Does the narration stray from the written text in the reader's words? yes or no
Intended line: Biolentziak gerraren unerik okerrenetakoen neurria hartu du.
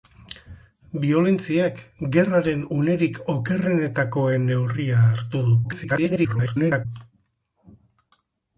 yes